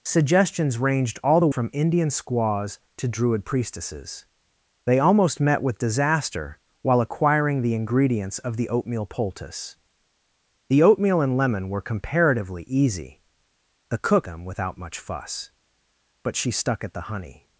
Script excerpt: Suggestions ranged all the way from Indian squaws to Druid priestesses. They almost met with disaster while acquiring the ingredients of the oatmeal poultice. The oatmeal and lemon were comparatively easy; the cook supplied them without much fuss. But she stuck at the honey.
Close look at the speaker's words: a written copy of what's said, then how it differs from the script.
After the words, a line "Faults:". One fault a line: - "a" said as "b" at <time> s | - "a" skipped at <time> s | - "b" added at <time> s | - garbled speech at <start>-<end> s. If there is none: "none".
Suggestions ranged all the from Indian squaws to Druid priestesses. They almost met with disaster while acquiring the ingredients of the oatmeal poultice. The oatmeal and lemon were comparatively easy; the cook them without much fuss. But she stuck at the honey.
Faults:
- "way" skipped at 1.5 s
- "supplied" skipped at 14.3 s